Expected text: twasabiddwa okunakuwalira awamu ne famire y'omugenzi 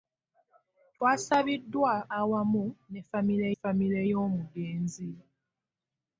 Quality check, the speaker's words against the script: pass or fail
fail